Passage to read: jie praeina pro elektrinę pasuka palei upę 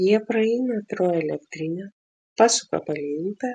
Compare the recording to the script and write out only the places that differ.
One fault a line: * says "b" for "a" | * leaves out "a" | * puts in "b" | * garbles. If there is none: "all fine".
all fine